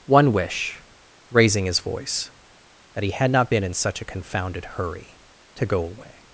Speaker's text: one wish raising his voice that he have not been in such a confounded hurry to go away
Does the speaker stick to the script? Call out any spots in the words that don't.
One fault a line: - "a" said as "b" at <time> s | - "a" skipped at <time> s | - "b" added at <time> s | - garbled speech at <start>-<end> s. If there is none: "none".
- "have" said as "had" at 3.1 s